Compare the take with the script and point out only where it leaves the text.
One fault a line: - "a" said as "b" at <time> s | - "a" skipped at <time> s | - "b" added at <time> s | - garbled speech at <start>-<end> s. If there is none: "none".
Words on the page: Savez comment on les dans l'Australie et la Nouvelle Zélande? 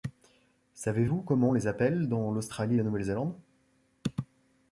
- "vous" added at 1.0 s
- "appelle" added at 1.6 s